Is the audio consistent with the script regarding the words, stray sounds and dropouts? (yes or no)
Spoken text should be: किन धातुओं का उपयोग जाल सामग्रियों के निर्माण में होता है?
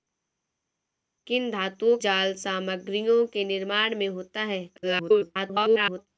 no